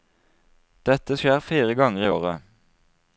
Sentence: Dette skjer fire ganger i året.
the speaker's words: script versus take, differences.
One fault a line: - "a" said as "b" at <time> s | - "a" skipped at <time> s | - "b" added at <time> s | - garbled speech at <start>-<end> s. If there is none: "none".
none